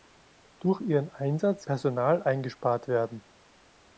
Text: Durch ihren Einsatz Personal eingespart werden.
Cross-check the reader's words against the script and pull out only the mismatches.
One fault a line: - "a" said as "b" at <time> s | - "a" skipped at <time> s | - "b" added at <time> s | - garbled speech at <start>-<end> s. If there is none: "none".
none